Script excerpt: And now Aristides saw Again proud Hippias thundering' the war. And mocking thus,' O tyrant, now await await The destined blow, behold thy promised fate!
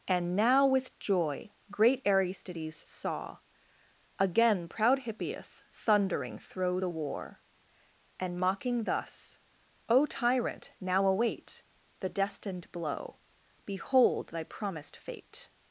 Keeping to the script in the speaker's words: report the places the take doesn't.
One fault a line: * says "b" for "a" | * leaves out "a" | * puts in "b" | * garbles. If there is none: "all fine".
* puts in "with joy great"
* puts in "thro"
* leaves out "await"